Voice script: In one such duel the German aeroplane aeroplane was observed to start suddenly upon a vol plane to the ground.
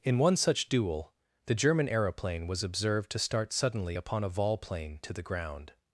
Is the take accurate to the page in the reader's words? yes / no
no